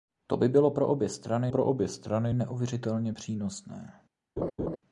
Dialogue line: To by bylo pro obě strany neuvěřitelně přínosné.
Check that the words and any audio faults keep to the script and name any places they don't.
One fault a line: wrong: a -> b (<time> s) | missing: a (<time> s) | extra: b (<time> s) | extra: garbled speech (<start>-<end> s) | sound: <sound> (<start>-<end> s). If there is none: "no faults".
extra: pro obě strany (1.5 s)
sound: laugh (4.4-4.8 s)